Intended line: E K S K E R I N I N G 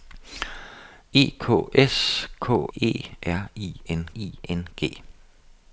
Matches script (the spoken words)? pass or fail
pass